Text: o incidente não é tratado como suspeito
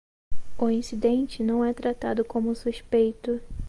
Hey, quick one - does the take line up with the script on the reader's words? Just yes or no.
yes